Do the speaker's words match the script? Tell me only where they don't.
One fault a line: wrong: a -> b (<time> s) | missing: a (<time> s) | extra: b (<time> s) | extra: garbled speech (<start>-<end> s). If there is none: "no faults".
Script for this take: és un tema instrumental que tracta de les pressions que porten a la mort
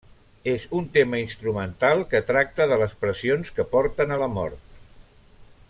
no faults